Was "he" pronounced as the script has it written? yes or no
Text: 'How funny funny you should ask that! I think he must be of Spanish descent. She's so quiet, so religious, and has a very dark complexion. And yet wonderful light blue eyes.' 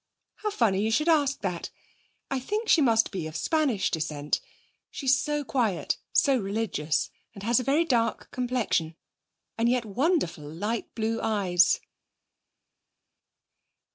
no